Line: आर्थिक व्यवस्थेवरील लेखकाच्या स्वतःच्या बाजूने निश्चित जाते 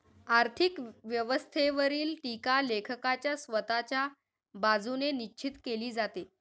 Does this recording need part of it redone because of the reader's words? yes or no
yes